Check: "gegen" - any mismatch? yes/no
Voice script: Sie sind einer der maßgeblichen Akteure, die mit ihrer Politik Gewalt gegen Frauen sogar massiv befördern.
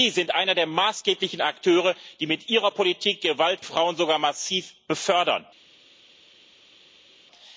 yes